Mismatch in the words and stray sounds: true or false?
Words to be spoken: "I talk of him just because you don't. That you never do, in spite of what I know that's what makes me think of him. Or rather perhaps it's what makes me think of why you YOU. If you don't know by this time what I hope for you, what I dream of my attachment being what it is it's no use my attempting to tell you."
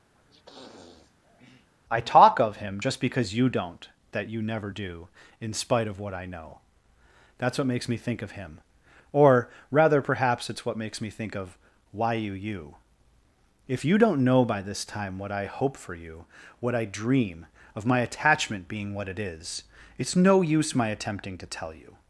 true